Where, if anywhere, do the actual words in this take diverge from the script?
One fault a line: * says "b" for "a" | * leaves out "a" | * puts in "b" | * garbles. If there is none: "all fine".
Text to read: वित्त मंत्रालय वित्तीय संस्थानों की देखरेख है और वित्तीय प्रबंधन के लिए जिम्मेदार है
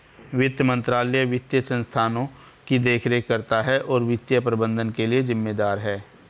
* puts in "करता"